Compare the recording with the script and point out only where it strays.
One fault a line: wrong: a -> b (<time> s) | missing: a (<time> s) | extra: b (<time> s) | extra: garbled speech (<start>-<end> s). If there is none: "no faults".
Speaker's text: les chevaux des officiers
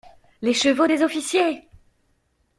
no faults